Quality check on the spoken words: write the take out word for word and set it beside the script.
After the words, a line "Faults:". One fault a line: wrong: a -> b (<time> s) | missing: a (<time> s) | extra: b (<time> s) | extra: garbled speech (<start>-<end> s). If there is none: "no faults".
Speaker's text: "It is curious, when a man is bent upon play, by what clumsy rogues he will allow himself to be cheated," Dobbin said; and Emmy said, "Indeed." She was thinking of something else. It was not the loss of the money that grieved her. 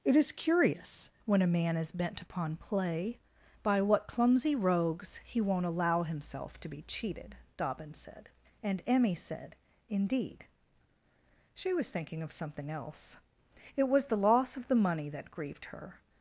"It is curious, when a man is bent upon play, by what clumsy rogues he won't allow himself to be cheated," Dobbin said; and Emmy said, "Indeed." She was thinking of something else. It was the loss of the money that grieved her.
Faults:
wrong: will -> won't (5.4 s)
missing: not (14.1 s)